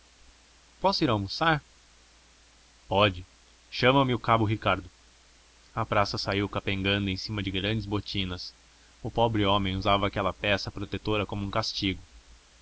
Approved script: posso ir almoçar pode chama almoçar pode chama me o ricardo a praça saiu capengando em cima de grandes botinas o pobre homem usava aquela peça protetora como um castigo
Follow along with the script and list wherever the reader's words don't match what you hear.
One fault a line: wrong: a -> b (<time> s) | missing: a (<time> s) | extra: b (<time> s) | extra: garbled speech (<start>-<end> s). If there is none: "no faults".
missing: almoçar pode chama (4.0 s)
extra: cabo (4.2 s)